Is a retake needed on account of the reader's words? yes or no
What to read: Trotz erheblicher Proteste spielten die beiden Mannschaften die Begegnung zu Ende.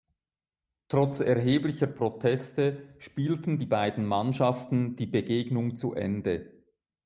no